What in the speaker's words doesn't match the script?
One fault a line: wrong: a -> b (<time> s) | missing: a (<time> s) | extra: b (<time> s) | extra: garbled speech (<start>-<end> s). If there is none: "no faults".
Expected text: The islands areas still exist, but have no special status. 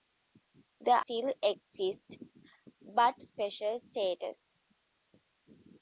missing: islands areas (1.0 s)
missing: have no (3.2 s)